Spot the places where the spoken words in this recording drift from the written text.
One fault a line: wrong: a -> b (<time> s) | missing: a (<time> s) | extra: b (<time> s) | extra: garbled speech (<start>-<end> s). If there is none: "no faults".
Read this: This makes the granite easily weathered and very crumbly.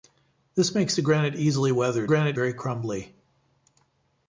wrong: and -> granite (2.1 s)